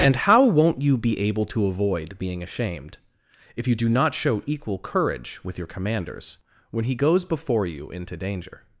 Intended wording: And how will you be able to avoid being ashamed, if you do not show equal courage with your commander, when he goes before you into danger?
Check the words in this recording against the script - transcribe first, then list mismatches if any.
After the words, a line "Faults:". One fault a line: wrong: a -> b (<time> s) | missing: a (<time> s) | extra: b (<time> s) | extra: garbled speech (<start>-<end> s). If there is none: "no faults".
And how won't you be able to avoid being ashamed, if you do not show equal courage with your commanders, when he goes before you into danger?
Faults:
wrong: will -> won't (0.4 s)
wrong: commander -> commanders (5.7 s)